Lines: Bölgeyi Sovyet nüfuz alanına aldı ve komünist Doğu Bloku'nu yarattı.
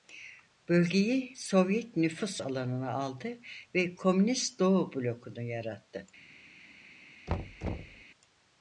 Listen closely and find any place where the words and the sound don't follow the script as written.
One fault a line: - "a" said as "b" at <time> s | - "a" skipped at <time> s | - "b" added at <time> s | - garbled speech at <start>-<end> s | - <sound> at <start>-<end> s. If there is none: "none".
- thud at 7.3-8.0 s